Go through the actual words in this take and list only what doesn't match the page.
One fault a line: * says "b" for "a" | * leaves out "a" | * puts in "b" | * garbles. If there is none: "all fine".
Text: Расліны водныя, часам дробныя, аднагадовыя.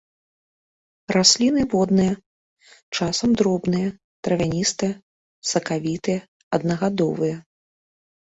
* puts in "травяністыя сакавітыя"